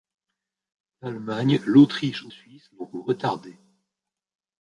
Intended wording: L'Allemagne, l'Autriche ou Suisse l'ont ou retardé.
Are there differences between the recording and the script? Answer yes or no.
no